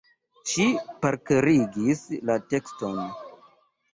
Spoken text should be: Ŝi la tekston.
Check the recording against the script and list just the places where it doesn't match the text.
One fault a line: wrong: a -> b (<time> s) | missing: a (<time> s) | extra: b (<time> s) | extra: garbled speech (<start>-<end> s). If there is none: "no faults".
extra: parkerigis (1.1 s)